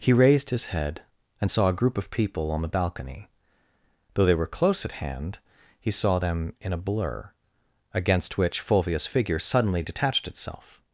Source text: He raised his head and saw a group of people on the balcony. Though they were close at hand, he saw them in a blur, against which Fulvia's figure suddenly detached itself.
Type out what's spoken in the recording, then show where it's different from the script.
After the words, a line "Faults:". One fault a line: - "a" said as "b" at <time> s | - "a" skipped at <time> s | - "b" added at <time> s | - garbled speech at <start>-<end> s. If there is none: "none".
He raised his head and saw a group of people on the balcony. Though they were close at hand, he saw them in a blur, against which Fulvia's figure suddenly detached itself.
Faults:
none